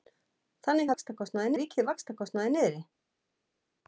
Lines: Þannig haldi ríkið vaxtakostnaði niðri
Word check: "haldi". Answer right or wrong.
wrong